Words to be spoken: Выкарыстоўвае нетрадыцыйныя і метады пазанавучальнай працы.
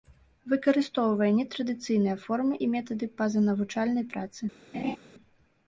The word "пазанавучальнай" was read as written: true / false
true